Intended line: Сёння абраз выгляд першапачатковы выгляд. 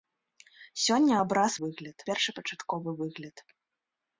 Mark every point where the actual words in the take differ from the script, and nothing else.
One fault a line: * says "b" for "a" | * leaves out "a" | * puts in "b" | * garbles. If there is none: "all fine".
all fine